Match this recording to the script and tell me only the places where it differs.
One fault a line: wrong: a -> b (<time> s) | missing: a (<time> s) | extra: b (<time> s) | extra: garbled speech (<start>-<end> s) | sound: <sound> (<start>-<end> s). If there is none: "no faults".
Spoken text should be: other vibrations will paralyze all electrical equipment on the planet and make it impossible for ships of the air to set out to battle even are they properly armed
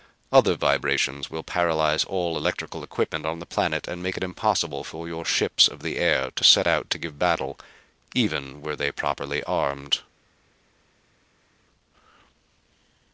extra: your (5.1 s)
extra: give (7.0 s)
wrong: are -> were (8.6 s)